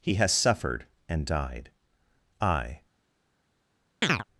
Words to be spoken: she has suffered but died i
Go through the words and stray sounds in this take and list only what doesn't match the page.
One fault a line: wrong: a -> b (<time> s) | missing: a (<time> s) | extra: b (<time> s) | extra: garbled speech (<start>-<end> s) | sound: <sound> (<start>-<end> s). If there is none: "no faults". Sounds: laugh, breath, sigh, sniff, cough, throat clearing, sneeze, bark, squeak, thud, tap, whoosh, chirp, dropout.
wrong: she -> he (0.0 s)
wrong: but -> and (1.1 s)
sound: chirp (4.0-4.2 s)